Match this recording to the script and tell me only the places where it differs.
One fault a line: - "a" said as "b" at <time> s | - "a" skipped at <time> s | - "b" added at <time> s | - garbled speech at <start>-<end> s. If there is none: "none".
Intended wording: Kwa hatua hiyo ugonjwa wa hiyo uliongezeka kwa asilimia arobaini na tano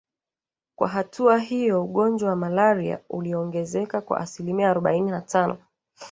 - "hiyo" said as "malaria" at 2.4 s